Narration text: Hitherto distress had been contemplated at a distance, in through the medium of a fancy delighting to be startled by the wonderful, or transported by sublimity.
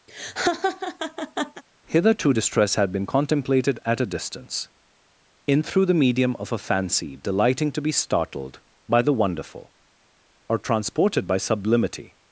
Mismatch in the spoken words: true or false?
false